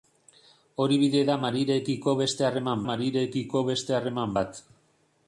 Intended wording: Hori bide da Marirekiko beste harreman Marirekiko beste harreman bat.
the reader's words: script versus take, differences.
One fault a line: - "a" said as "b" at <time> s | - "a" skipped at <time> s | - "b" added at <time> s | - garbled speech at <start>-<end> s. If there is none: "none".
none